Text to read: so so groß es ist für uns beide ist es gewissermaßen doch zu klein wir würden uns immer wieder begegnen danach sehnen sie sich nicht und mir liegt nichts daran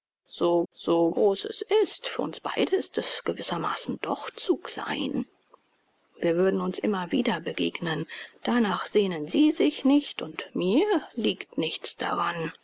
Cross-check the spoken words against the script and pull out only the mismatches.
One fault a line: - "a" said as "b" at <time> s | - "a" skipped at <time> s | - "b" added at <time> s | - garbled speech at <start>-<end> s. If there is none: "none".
none